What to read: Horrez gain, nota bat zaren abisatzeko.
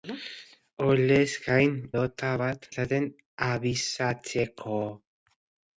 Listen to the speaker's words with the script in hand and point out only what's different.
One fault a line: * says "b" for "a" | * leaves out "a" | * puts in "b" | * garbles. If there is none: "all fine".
all fine